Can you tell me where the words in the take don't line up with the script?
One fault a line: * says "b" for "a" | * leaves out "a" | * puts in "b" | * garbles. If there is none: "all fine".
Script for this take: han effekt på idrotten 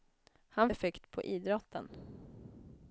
all fine